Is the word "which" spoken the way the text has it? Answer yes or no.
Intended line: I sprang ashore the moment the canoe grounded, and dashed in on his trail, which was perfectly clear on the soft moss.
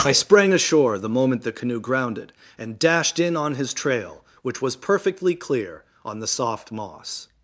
yes